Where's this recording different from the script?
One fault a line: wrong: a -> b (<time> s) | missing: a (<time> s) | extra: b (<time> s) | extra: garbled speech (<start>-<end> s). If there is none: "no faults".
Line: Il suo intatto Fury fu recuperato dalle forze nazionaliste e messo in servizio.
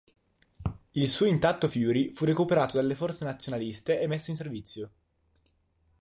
no faults